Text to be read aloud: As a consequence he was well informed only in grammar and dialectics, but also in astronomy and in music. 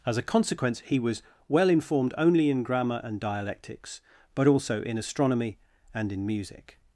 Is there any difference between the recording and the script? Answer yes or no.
no